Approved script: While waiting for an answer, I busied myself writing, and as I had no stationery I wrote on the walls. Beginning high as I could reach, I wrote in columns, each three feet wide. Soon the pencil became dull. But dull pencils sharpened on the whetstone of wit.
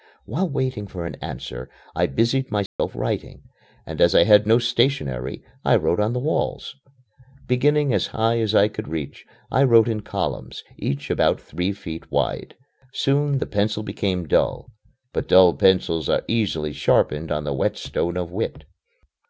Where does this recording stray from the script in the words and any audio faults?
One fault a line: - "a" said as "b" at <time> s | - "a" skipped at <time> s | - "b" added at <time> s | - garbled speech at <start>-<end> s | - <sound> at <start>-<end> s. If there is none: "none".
- dropout at 2.7-2.8 s
- "as" added at 7.9 s
- "about" added at 11.1 s
- "are easily" added at 16.1 s